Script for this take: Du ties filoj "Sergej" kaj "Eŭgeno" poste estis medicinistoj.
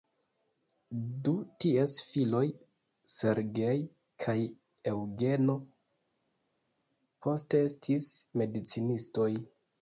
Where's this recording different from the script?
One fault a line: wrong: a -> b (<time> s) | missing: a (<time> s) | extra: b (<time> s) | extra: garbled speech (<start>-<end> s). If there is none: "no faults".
no faults